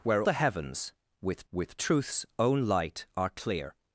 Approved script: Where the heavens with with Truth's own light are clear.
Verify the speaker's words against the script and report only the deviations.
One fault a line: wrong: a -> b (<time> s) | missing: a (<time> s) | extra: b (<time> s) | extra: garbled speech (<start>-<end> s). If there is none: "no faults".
no faults